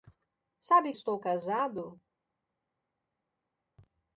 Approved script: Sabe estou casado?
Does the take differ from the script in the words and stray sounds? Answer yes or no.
no